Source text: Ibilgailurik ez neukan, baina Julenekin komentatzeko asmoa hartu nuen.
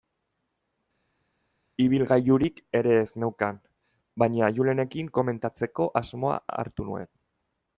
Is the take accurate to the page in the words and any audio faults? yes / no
no